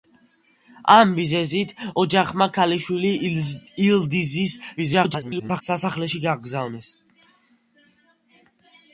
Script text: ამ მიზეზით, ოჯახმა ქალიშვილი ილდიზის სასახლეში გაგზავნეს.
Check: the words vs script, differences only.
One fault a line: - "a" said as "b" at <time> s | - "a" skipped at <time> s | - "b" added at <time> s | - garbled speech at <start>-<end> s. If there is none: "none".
- garbled speech at 4.8-5.6 s